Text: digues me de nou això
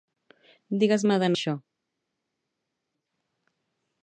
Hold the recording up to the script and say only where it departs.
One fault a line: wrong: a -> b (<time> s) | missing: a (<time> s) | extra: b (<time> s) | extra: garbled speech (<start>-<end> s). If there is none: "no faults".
missing: nou (1.3 s)